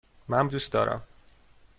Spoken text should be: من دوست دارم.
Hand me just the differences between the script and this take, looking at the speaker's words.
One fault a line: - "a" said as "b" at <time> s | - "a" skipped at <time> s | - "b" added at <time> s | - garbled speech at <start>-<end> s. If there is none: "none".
none